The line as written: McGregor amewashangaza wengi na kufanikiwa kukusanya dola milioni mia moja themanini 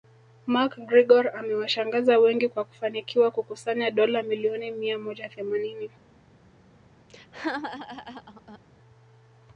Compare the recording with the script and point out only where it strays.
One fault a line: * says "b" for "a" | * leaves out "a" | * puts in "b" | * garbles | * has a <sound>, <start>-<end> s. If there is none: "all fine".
* says "kwa" for "na"
* has a laugh, 7.1-8.6 s